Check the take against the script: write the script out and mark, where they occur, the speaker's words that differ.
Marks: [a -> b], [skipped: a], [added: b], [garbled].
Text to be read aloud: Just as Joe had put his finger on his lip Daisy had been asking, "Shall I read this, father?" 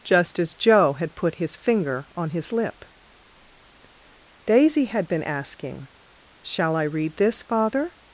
Just as Joe had put his finger on his lip Daisy had been asking, "Shall I read this, father?"